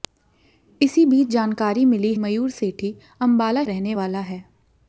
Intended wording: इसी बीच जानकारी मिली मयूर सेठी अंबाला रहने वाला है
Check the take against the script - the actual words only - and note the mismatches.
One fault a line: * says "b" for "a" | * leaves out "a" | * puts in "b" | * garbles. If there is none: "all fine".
all fine